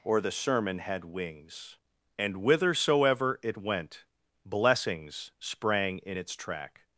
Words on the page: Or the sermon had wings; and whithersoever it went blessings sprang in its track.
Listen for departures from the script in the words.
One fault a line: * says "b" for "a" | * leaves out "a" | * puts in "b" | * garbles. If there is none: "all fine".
all fine